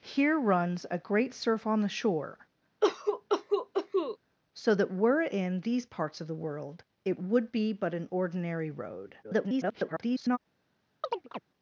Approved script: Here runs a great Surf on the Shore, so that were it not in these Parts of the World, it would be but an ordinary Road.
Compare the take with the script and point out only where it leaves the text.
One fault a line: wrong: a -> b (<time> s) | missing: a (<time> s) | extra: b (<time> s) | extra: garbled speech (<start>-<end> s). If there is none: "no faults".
missing: not (5.3 s)
extra: garbled speech (9.2-10.4 s)